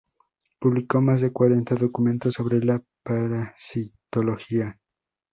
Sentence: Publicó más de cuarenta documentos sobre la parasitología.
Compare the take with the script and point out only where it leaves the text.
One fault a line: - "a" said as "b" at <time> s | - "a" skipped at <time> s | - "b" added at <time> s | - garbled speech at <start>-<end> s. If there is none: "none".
none